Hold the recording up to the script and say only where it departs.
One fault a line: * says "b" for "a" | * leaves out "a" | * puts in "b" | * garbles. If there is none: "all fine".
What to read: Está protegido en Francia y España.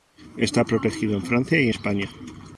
all fine